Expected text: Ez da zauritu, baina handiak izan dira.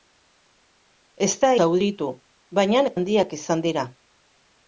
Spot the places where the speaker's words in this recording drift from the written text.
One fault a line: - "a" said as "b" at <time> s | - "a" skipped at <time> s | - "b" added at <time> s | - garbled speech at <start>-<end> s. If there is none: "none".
none